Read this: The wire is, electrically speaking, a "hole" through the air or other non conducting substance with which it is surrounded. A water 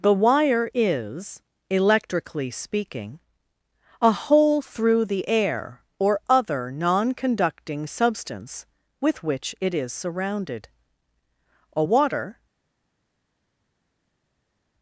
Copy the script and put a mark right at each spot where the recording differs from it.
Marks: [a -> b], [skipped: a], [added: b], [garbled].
The wire is, electrically speaking, a "hole" through the air or other non conducting substance with which it is surrounded. A water